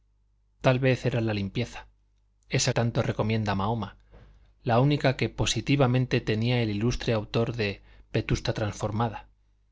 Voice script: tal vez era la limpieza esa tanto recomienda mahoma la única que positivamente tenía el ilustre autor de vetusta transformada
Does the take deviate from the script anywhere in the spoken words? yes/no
no